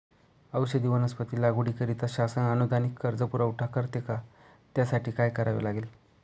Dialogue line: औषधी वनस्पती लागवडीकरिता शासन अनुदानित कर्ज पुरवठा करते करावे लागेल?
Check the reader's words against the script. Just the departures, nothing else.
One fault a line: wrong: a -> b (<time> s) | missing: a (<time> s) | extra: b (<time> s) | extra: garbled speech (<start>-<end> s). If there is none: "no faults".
extra: का त्यासाठी काय (4.0 s)